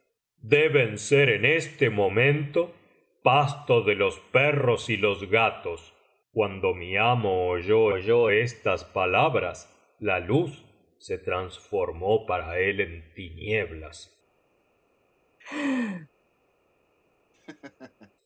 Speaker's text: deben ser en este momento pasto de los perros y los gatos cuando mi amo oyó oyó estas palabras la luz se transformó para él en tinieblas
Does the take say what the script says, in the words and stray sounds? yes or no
no